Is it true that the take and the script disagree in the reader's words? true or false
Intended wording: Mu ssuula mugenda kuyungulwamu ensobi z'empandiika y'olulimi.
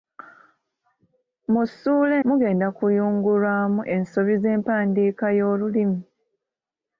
false